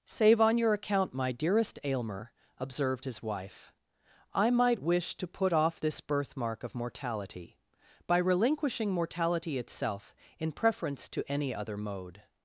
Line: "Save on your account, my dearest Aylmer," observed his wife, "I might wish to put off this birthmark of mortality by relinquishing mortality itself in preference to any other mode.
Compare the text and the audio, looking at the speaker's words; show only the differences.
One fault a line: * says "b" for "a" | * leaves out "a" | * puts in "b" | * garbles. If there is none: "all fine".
all fine